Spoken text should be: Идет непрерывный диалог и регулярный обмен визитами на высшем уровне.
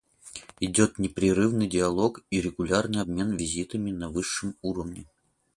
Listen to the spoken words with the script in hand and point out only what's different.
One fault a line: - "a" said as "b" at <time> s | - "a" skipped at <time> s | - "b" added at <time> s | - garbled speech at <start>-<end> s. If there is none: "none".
none